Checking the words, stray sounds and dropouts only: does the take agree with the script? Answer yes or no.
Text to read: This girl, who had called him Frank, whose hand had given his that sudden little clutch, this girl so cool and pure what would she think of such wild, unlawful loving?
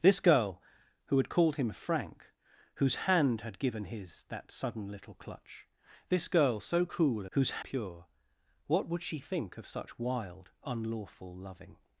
no